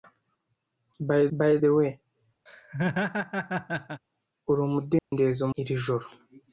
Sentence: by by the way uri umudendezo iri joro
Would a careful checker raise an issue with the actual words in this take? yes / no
no